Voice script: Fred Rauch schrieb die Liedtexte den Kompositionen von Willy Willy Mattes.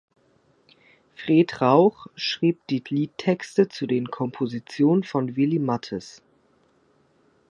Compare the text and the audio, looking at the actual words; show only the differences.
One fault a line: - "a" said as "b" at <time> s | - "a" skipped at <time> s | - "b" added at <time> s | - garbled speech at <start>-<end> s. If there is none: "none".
- "zu" added at 3.7 s
- "Willy" skipped at 5.6 s